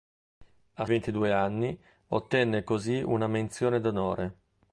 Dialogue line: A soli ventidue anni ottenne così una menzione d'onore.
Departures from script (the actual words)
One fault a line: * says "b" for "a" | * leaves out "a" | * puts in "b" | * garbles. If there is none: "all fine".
* leaves out "soli"